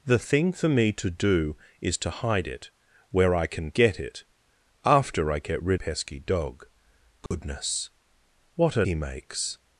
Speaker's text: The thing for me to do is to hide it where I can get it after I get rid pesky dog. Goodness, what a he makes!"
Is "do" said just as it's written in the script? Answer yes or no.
yes